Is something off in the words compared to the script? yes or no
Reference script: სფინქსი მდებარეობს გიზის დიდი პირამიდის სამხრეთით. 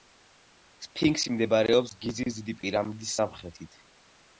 no